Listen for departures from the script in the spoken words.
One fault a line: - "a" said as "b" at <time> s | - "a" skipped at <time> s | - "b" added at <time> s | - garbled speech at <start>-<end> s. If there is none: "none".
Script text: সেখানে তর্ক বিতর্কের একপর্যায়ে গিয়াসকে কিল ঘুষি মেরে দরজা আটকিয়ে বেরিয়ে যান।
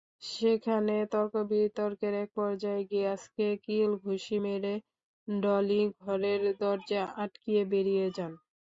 - "ডলি ঘরের" added at 5.3 s